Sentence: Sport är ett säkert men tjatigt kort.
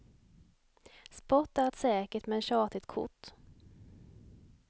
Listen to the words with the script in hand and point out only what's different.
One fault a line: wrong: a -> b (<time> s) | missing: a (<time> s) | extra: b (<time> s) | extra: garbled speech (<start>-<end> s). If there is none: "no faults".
no faults